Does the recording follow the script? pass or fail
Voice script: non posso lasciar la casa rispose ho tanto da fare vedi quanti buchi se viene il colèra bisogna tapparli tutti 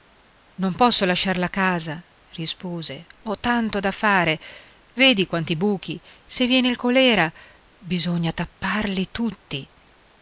pass